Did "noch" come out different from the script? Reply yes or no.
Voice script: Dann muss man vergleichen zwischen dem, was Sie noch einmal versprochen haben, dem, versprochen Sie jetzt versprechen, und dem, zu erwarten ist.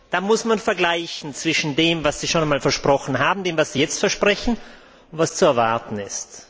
yes